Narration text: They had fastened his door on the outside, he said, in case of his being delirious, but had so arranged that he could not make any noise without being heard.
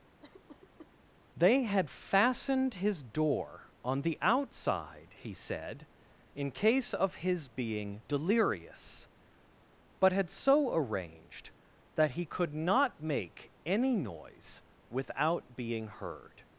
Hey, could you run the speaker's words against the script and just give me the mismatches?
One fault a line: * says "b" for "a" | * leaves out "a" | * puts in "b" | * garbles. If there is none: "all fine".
all fine